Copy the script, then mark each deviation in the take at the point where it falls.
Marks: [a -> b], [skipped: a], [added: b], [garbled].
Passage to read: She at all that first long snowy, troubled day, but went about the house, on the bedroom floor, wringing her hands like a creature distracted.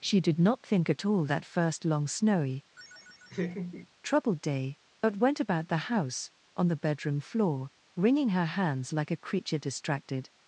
She [added: did not think] at all that first long snowy, troubled day, but went about the house, on the bedroom floor, wringing her hands like a creature distracted.